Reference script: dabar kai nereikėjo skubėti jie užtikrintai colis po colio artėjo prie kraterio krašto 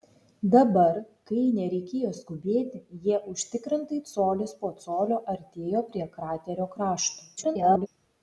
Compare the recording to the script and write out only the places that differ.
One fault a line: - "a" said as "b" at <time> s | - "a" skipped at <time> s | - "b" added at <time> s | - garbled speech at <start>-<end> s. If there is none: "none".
- garbled speech at 7.4-7.9 s